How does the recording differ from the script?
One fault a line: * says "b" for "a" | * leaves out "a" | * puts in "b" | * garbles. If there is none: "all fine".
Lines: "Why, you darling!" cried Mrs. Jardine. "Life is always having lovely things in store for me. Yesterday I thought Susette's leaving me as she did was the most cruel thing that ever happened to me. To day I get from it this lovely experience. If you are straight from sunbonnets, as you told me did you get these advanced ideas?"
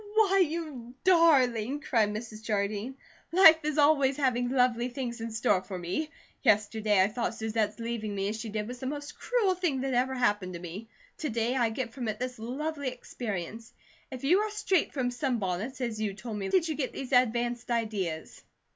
all fine